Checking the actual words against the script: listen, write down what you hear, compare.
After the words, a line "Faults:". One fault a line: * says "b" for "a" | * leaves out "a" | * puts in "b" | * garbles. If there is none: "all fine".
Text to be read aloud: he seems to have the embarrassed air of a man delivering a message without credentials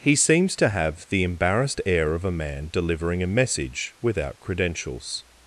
he seems to have the embarrassed air of a man delivering a message without credentials
Faults:
all fine